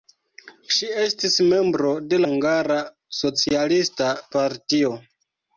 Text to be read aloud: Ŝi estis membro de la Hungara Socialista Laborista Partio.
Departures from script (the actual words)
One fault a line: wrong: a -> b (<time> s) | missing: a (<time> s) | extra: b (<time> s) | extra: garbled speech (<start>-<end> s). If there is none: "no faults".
missing: la (2.2 s)
missing: Laborista (4.1 s)